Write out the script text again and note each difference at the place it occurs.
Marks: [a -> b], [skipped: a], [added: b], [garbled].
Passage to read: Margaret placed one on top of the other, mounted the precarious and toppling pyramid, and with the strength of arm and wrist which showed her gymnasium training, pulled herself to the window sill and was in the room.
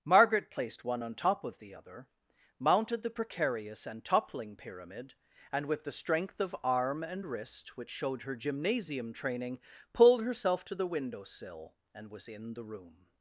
Margaret placed one on top of the other, mounted the precarious and toppling pyramid, and with the strength of arm and wrist which showed her gymnasium training, pulled herself to the window sill and was in the room.